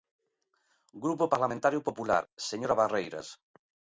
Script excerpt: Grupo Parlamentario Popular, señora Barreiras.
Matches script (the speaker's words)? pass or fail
pass